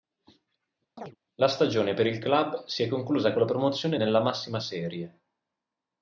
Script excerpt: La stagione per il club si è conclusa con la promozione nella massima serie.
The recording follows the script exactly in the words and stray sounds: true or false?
false